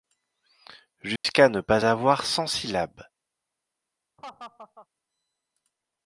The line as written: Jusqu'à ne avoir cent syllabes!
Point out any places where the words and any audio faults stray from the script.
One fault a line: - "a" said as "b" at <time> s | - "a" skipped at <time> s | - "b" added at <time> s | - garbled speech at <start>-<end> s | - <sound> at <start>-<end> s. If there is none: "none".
- dropout at 1.2-1.2 s
- "pas" added at 1.6 s
- laugh at 4.2-4.9 s